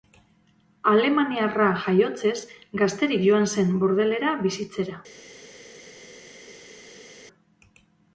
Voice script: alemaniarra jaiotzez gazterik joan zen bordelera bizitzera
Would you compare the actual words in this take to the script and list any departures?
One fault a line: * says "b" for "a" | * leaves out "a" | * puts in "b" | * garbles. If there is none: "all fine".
all fine